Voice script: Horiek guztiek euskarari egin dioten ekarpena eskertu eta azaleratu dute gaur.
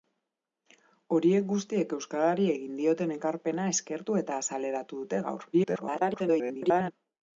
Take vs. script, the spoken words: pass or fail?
fail